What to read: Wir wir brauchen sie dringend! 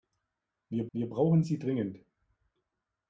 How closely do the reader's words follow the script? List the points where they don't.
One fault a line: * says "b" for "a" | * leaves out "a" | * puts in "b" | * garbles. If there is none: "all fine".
all fine